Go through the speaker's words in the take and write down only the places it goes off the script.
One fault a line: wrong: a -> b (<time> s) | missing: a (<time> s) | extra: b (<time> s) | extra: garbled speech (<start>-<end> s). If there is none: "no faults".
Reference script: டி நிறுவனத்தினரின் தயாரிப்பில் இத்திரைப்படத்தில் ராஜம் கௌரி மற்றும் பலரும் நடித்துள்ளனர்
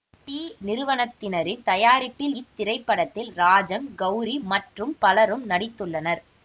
no faults